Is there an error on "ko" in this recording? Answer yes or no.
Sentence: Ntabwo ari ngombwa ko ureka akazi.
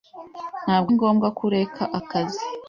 no